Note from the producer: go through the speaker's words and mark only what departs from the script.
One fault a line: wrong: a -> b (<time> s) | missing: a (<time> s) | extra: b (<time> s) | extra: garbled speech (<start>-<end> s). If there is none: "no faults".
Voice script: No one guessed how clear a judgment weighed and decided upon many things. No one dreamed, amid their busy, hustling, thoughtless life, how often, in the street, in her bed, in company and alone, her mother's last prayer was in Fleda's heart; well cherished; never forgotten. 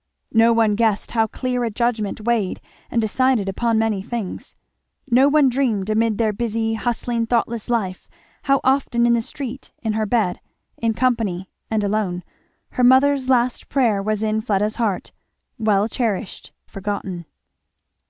missing: never (16.5 s)